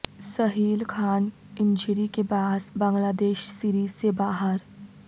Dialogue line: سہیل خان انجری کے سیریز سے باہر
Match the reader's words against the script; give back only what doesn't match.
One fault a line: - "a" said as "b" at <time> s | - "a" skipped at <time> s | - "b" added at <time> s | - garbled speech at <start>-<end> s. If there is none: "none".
- "باعث بنگلہ دیش" added at 2.2 s